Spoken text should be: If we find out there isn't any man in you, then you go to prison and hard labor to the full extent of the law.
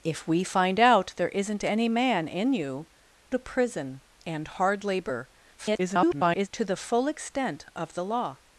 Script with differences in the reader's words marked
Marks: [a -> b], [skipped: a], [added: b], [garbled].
If we find out there isn't any man in you, [skipped: then you go] to prison and hard labor [garbled] to the full extent of the law.